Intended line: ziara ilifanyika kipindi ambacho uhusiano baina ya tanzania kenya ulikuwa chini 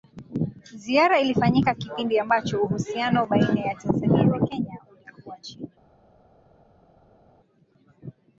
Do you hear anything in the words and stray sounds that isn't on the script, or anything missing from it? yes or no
yes